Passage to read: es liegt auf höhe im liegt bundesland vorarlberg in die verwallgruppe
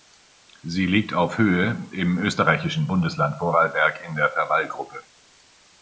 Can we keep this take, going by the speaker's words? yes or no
no